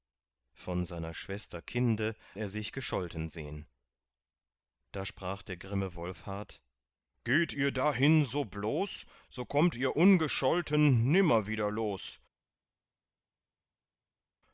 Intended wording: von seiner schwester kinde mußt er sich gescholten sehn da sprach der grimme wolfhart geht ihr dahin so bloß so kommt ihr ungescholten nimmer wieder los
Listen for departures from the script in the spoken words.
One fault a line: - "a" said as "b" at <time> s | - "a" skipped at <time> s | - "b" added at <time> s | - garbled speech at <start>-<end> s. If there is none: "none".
- "mußt" skipped at 2.1 s